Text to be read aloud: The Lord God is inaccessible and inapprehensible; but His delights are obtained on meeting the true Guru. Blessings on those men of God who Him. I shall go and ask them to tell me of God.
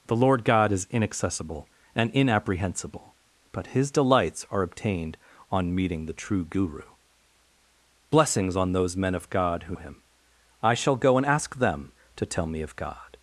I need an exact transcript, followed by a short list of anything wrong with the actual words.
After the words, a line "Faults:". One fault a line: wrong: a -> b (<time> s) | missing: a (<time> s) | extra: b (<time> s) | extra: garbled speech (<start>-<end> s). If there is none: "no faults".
The Lord God is inaccessible and inapprehensible; but His delights are obtained on meeting the true Guru. Blessings on those men of God who Him. I shall go and ask them to tell me of God.
Faults:
no faults